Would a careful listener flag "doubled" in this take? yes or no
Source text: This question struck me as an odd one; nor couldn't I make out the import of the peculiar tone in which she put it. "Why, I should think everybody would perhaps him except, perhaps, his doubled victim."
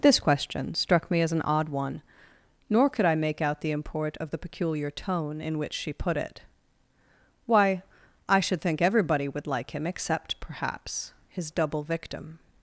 yes